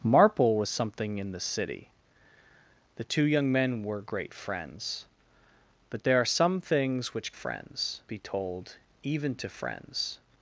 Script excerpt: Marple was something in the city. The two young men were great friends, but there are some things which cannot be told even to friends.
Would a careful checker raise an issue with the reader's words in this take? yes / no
yes